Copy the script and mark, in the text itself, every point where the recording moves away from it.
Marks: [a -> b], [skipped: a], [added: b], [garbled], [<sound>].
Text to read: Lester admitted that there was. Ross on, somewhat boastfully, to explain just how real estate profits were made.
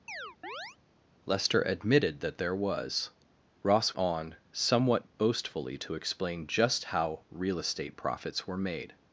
[chirp] Lester admitted that there was. Ross on, somewhat boastfully, to explain just how real estate profits were made.